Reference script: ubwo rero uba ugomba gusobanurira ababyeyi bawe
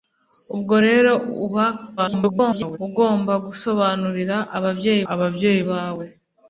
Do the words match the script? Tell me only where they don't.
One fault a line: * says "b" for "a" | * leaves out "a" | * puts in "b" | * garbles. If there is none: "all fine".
* garbles
* puts in "ababyeyi"